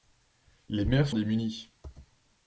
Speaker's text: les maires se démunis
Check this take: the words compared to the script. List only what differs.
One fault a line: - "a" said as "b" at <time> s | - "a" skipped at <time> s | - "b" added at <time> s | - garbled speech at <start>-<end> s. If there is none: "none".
none